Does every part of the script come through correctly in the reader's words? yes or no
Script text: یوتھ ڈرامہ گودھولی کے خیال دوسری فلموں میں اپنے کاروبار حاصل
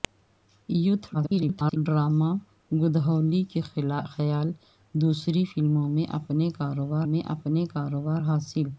no